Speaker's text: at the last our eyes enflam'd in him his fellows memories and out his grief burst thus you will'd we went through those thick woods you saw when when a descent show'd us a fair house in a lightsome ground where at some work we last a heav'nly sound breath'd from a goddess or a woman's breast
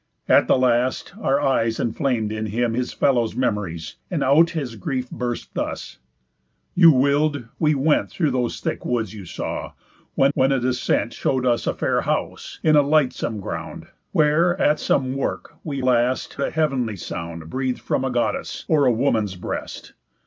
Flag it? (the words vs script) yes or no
no